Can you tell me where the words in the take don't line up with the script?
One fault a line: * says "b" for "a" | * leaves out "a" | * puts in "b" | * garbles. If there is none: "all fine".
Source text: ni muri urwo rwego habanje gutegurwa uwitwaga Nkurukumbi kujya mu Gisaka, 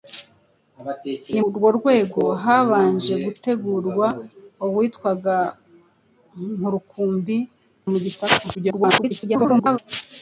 * leaves out "muri"
* leaves out "kujya"
* garbles